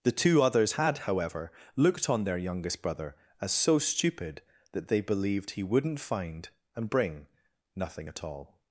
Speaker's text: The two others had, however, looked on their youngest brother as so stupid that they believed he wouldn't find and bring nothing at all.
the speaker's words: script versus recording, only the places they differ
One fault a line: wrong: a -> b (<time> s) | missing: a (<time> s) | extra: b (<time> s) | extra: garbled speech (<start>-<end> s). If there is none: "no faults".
no faults